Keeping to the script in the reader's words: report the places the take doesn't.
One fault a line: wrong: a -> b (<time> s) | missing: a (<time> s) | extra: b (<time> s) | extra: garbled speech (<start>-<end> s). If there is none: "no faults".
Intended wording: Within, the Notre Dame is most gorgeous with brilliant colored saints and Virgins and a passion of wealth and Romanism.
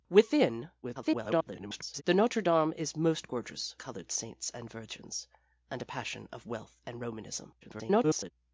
extra: garbled speech (0.8-2.0 s)
missing: with brilliant (3.7 s)
extra: garbled speech (7.6-8.3 s)